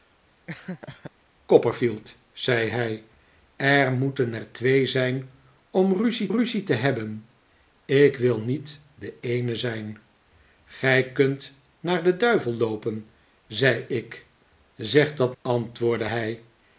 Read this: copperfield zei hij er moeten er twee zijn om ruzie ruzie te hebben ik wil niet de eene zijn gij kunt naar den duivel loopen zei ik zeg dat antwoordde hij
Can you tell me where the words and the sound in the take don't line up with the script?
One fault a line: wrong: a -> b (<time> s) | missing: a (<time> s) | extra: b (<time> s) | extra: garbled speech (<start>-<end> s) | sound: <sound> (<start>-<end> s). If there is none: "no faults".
sound: laugh (0.5-1.1 s)